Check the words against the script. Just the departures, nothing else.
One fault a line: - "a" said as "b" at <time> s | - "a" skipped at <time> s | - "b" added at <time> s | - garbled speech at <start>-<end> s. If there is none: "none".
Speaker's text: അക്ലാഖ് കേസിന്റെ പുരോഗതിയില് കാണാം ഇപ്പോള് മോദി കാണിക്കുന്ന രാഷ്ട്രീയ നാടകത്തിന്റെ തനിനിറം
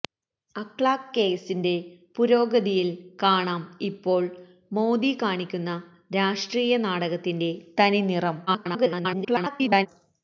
- garbled speech at 8.5-9.9 s